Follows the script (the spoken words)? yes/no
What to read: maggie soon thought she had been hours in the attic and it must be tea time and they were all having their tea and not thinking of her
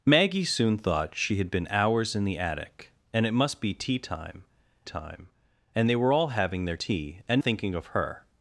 no